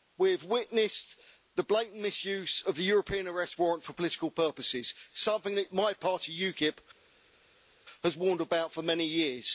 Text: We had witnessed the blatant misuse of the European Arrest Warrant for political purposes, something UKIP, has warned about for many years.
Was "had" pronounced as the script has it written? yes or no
no